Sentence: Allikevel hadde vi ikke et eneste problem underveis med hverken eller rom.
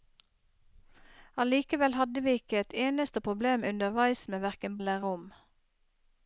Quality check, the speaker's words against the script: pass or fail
pass